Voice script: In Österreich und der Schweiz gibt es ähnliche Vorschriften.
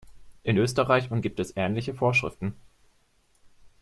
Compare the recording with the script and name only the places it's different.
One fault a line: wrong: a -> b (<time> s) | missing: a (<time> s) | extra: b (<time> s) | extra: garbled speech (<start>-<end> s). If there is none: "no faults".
missing: der Schweiz (1.2 s)